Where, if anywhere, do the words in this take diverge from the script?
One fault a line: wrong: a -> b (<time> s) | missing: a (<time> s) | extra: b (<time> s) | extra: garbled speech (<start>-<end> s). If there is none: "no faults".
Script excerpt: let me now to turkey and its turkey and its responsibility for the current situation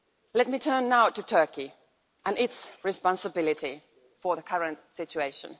extra: turn (0.6 s)
missing: turkey and its (2.7 s)